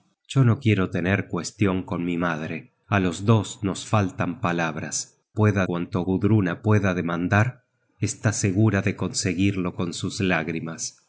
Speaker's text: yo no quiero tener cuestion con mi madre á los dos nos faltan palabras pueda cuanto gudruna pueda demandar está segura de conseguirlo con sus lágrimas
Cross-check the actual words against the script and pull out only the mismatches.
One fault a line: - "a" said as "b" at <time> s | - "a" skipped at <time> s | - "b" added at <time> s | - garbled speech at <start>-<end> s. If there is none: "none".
none